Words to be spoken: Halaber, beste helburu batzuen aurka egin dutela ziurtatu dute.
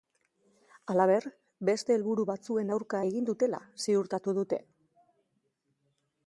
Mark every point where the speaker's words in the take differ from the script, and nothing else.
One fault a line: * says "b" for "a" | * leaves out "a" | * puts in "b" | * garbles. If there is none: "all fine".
all fine